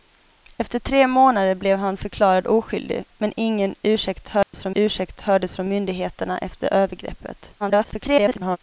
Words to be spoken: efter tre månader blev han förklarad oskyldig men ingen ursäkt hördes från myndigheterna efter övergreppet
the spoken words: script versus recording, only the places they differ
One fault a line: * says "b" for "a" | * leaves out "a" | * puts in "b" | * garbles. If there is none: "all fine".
* puts in "ursäkt hördes från"
* garbles